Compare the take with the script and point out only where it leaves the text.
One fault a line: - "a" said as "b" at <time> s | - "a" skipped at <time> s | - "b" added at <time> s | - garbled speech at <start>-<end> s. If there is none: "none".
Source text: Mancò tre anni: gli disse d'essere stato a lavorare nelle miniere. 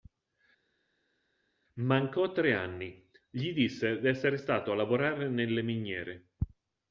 none